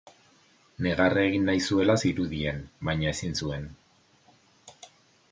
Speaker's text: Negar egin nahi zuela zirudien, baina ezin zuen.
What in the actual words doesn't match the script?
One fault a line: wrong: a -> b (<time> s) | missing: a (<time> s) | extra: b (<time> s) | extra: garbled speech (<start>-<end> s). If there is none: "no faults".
no faults